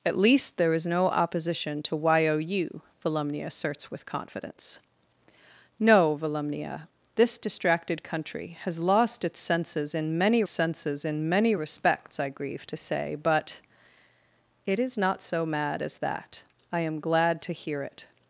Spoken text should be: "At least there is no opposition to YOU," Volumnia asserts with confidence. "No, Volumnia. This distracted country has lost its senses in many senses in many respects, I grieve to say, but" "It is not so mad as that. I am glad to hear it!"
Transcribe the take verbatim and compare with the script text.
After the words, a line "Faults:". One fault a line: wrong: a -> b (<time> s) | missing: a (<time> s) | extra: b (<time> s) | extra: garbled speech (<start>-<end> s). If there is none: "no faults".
"At least there is no opposition to YOU," Volumnia asserts with confidence. "No, Volumnia. This distracted country has lost its senses in many senses in many respects, I grieve to say, but" "It is not so mad as that. I am glad to hear it!"
Faults:
no faults